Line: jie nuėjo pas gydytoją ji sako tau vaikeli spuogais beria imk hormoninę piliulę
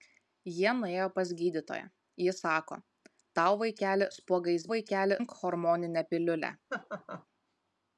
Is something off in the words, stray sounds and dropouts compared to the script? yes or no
yes